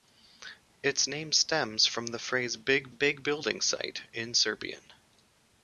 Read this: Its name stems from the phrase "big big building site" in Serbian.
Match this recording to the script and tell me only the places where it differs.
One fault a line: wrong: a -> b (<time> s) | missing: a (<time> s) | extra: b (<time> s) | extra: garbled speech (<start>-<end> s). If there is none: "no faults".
no faults